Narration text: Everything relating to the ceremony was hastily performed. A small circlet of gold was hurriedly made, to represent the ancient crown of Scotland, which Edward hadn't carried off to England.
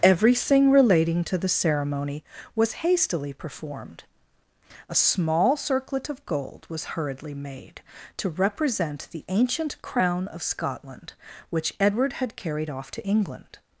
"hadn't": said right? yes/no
no